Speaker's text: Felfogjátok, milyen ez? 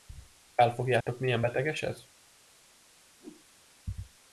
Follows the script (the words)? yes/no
no